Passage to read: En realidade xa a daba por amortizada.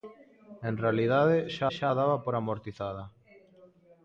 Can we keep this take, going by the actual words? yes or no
no